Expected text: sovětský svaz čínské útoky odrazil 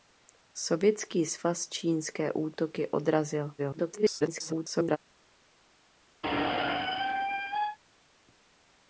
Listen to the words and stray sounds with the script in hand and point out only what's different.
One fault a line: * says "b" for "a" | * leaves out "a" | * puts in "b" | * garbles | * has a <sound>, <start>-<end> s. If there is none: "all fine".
* garbles
* has a squeak, 6.2-7.8 s